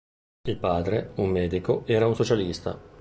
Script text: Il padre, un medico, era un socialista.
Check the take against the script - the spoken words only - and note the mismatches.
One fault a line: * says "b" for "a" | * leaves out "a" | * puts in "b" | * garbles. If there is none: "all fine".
all fine